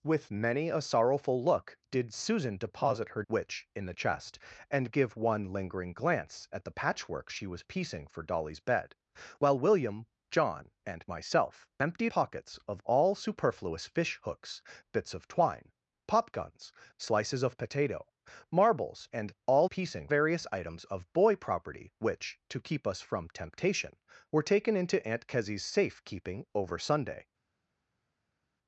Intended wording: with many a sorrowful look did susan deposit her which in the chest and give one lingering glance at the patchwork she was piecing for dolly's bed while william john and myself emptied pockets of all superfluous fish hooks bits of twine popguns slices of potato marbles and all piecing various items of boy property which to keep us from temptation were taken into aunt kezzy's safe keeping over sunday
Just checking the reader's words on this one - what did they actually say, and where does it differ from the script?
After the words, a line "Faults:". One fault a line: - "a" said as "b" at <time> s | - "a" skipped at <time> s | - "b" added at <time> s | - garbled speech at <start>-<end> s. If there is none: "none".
with many a sorrowful look did susan deposit her which in the chest and give one lingering glance at the patchwork she was piecing for dolly's bed while william john and myself emptied pockets of all superfluous fish hooks bits of twine popguns slices of potato marbles and all piecing various items of boy property which to keep us from temptation were taken into aunt kezzy's safe keeping over sunday
Faults:
none